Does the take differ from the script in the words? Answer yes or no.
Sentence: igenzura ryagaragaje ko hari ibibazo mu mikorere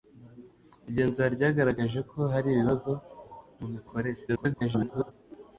yes